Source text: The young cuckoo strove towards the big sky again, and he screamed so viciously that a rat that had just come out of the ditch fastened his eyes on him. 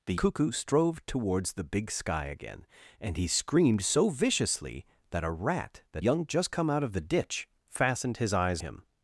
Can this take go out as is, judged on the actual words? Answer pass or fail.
fail